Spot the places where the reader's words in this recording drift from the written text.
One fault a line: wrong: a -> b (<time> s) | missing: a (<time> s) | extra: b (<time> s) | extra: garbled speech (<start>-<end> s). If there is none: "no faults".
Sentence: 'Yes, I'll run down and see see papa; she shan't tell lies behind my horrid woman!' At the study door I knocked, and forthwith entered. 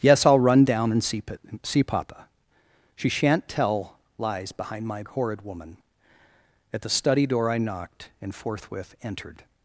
no faults